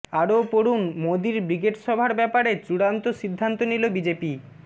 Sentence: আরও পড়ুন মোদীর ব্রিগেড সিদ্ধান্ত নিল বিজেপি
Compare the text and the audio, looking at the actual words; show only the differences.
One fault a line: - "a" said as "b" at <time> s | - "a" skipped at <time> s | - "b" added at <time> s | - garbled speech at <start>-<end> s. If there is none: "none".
- "সভার ব্যাপারে চূড়ান্ত" added at 1.8 s